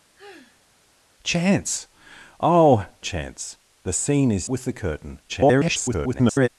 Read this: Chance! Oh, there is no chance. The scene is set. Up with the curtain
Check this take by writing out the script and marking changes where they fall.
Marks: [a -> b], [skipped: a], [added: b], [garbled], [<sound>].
[sigh] Chance! Oh, [skipped: there is no] chance. The scene is [skipped: set. Up] with the curtain [garbled]